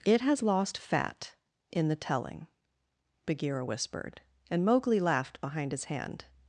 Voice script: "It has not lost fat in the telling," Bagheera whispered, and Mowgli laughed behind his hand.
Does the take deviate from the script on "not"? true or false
true